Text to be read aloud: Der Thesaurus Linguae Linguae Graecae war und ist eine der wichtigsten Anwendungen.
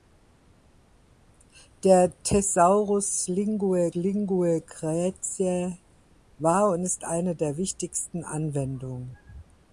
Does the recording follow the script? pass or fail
pass